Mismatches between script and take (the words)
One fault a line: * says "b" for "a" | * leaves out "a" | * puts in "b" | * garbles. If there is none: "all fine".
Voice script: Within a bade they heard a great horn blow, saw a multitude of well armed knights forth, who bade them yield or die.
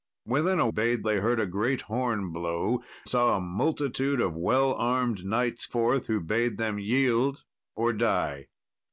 all fine